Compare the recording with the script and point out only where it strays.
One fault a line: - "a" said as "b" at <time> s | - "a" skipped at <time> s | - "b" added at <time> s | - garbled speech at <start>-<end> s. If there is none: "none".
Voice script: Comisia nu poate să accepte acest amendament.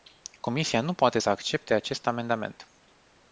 none